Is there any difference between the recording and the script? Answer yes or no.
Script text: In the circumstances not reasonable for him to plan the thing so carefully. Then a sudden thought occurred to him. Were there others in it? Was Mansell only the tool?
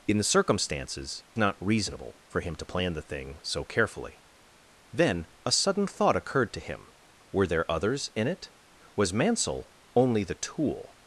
no